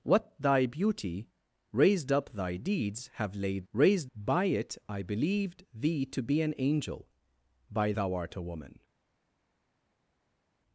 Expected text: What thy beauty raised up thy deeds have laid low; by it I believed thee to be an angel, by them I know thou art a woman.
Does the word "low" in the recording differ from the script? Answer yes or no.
yes